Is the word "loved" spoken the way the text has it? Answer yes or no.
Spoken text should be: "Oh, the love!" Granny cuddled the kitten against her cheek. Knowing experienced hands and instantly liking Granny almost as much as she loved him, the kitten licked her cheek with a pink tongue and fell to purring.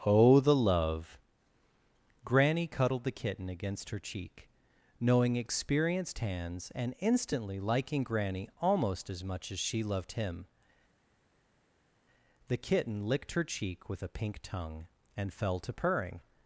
yes